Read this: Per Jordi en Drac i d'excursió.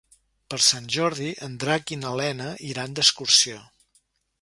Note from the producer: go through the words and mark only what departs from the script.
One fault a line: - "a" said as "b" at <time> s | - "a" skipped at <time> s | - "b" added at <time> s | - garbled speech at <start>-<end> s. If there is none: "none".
- "Sant" added at 0.7 s
- "na Lena iran" added at 2.1 s